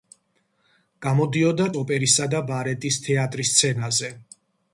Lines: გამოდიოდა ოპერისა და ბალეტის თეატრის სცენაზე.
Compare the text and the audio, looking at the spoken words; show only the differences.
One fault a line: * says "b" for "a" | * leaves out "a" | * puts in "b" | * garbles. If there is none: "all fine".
all fine